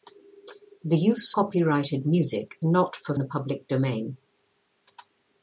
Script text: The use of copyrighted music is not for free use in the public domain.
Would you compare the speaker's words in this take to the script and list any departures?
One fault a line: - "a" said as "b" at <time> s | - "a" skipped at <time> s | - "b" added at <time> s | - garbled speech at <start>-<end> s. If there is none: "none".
- "of" skipped at 1.4 s
- "is" skipped at 2.6 s
- "free use in" skipped at 3.1 s